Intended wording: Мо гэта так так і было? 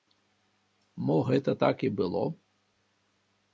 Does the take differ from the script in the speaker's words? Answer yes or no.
yes